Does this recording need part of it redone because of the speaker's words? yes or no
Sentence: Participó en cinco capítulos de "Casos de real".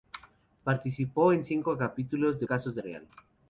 no